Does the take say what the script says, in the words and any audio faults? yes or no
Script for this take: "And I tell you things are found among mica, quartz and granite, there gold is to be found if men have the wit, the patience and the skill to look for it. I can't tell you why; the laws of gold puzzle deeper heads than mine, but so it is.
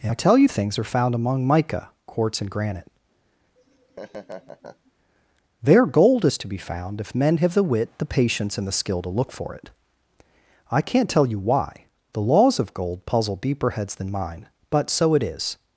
no